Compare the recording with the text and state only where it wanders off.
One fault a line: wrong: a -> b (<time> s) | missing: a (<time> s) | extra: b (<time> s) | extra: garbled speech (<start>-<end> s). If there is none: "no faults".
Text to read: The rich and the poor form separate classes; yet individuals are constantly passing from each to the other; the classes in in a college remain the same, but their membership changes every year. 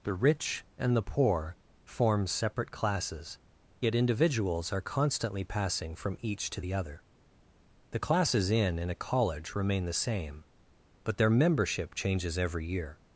no faults